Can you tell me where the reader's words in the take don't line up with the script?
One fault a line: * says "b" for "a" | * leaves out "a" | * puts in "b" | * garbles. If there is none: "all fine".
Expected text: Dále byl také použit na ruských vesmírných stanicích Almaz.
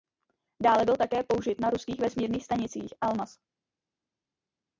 all fine